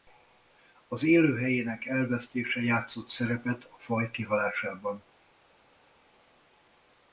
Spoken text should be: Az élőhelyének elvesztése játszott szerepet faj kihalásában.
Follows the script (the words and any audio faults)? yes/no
no